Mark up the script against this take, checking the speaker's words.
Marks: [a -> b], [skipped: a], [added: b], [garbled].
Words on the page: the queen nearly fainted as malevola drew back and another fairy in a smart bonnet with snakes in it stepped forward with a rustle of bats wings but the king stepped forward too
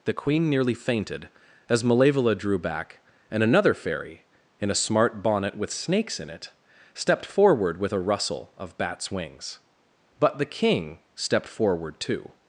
the queen nearly fainted as malevola drew back and another fairy in a smart bonnet with snakes in it stepped forward with a rustle of bats wings but the king stepped forward too